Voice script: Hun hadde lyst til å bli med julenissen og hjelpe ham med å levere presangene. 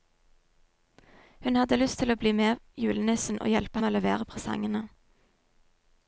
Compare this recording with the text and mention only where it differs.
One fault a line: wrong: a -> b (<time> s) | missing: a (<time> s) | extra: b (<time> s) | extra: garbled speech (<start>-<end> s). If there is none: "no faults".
missing: ham (3.8 s)